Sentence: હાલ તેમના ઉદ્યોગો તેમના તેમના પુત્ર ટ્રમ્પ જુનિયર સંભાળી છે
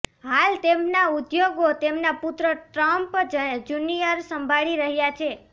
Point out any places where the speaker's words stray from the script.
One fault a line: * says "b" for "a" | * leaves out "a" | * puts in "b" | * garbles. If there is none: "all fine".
* leaves out "તેમના"
* puts in "રહ્યા"